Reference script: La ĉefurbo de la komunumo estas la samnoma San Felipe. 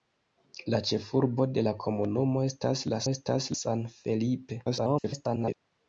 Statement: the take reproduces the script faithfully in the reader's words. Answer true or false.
false